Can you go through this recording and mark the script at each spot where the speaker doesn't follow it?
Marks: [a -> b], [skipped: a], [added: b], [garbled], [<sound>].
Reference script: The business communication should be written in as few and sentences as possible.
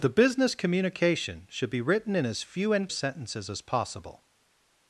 The business communication should be written in as few and sentences as possible.